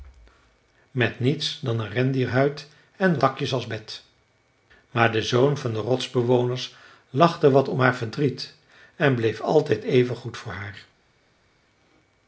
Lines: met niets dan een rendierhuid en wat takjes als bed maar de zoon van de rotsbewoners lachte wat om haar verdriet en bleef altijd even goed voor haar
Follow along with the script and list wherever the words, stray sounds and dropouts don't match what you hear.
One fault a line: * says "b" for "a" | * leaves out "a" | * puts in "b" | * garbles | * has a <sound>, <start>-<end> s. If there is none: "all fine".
* leaves out "wat"